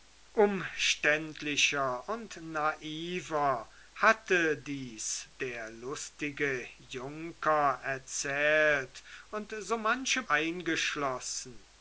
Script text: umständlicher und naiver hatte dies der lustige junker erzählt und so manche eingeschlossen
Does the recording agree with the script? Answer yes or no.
yes